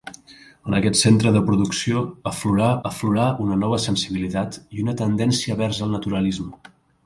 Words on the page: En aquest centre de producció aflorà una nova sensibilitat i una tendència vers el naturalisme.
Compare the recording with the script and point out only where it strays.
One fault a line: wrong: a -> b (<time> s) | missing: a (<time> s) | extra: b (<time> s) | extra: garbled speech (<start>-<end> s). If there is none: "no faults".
extra: aflorà (2.9 s)